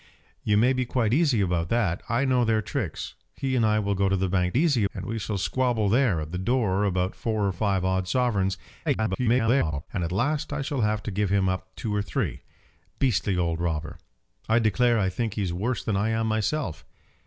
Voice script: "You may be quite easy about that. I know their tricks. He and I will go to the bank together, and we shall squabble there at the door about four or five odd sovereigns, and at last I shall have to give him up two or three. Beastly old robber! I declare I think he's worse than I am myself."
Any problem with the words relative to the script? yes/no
yes